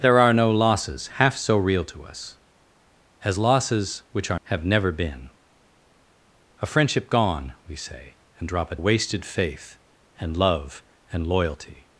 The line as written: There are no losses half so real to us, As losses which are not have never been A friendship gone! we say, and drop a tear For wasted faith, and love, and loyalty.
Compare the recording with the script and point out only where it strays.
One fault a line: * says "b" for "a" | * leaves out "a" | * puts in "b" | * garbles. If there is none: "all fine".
* leaves out "not"
* leaves out "tear For"